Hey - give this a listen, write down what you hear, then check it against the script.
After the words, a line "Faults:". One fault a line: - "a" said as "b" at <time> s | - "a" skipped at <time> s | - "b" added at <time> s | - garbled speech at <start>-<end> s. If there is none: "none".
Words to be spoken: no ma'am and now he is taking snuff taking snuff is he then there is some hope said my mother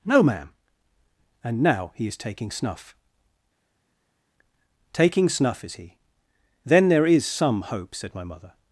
no ma'am and now he is taking snuff taking snuff is he then there is some hope said my mother
Faults:
none